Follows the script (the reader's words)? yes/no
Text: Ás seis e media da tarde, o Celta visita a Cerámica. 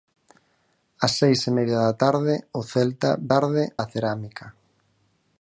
no